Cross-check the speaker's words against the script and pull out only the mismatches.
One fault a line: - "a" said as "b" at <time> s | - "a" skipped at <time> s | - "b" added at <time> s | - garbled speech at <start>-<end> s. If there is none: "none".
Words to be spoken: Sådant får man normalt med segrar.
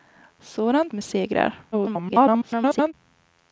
- "får man normalt" skipped at 0.9 s
- garbled speech at 1.7-2.9 s